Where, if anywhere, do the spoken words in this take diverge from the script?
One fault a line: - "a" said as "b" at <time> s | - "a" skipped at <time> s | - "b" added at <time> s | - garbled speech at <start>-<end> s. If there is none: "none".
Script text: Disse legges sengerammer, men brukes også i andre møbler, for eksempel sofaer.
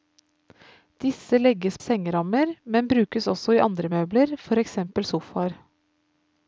none